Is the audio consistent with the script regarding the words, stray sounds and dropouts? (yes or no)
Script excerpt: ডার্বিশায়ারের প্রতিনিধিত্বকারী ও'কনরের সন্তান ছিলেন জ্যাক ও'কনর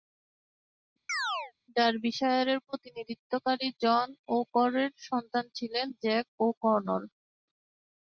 no